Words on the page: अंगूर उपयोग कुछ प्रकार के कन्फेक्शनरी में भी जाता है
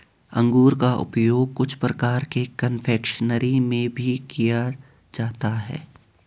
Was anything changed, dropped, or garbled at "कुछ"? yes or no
no